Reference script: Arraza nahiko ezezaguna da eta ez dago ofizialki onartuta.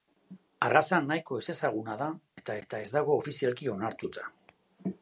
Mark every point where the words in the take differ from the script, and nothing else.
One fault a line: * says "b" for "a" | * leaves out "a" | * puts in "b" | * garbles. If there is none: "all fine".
* puts in "eta"